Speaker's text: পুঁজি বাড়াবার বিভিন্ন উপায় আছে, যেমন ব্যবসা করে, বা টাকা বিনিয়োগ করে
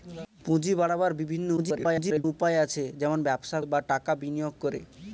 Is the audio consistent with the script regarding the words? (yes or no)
no